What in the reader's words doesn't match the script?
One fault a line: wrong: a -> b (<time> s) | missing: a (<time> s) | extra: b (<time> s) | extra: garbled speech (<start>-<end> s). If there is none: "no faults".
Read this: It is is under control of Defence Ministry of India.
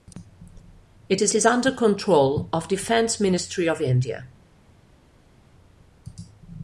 no faults